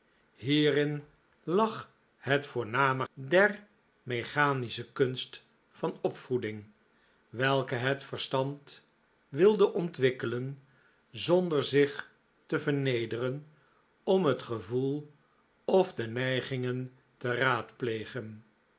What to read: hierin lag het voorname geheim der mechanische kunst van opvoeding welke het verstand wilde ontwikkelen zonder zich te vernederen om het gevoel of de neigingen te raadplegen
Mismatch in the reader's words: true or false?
true